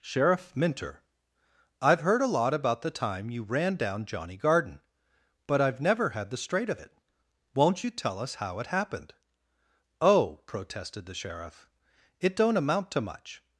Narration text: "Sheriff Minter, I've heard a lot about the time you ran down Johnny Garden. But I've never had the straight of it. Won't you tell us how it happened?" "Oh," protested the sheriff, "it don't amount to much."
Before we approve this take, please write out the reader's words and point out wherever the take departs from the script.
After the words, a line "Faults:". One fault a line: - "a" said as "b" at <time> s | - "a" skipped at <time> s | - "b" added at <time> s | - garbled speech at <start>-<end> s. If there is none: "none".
"Sheriff Minter, I've heard a lot about the time you ran down Johnny Garden. But I've never had the straight of it. Won't you tell us how it happened?" "Oh," protested the sheriff, "it don't amount to much."
Faults:
none